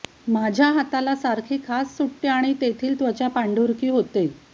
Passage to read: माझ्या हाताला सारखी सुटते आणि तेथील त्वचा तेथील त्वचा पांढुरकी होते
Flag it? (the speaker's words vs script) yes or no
yes